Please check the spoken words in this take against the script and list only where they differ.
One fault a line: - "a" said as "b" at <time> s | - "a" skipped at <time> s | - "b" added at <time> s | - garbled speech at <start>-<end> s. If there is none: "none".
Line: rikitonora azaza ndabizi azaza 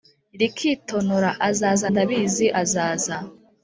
none